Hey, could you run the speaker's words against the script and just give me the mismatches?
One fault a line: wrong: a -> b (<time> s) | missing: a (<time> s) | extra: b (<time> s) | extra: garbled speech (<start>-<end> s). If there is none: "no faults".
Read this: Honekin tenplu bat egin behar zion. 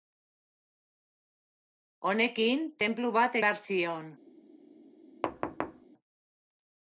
missing: egin (3.4 s)